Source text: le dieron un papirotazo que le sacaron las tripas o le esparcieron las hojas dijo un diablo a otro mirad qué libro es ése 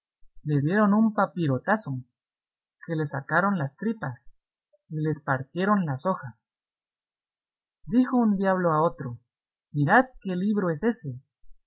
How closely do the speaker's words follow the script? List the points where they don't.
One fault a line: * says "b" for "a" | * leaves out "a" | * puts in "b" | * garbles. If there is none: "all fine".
* says "y" for "o"